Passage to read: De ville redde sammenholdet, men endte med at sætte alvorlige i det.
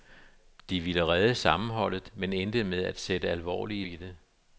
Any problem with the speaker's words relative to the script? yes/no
no